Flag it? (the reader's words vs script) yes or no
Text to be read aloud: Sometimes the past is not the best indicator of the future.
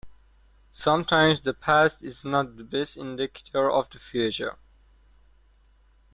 no